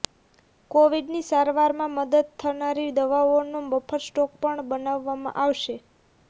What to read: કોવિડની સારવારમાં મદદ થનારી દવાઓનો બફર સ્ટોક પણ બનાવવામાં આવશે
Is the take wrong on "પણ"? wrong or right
right